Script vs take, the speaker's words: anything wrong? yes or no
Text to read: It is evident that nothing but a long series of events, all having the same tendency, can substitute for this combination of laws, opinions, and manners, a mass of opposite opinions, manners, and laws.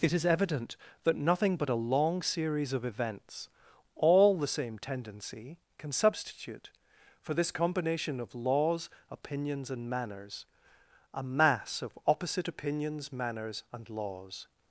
yes